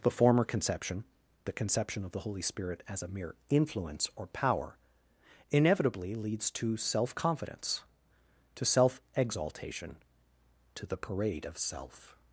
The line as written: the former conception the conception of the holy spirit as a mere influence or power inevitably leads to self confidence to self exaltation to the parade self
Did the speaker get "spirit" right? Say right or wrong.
right